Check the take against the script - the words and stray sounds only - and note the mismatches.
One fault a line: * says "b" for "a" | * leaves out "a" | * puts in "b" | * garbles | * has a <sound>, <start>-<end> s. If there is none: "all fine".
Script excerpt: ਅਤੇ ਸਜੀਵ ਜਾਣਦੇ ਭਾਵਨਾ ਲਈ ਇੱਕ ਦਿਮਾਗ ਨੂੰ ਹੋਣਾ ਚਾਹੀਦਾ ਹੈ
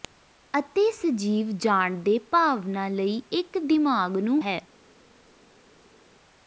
* leaves out "ਹੋਣਾ ਚਾਹੀਦਾ"